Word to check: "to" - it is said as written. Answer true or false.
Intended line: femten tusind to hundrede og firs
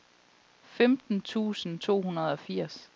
true